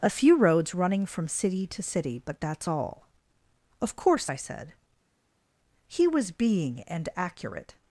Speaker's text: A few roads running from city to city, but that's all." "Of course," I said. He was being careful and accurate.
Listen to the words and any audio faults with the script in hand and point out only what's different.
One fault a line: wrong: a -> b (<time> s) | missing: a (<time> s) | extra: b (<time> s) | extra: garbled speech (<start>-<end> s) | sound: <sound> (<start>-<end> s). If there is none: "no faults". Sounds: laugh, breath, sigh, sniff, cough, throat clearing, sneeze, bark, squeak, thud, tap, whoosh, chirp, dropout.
missing: careful (6.8 s)